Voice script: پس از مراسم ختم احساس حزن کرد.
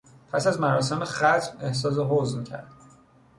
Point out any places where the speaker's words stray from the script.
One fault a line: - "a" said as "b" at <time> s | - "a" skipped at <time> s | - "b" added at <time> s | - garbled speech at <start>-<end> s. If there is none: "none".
none